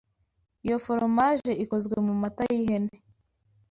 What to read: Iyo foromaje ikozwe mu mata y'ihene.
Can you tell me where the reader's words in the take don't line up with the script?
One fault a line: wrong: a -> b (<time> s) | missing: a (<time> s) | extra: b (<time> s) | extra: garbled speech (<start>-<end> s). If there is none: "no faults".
no faults